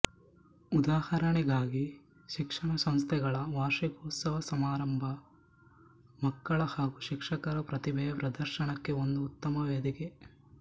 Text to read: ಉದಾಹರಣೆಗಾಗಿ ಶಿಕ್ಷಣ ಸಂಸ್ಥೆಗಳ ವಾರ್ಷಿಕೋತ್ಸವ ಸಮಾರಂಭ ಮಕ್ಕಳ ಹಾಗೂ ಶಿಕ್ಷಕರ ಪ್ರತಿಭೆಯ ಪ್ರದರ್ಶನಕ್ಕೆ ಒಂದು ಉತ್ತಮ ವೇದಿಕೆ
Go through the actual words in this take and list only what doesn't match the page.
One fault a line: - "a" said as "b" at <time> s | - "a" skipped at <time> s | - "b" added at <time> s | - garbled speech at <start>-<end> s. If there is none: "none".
none